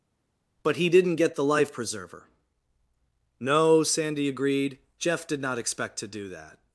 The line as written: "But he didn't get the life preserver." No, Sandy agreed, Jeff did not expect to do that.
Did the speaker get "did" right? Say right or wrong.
right